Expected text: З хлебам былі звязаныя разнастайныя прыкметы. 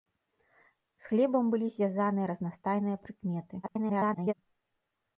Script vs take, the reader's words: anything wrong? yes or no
yes